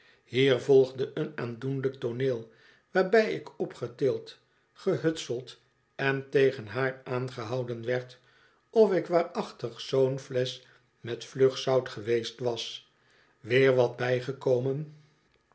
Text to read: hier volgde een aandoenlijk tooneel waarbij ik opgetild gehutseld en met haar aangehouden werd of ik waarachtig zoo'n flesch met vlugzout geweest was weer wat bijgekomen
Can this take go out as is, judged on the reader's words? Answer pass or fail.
fail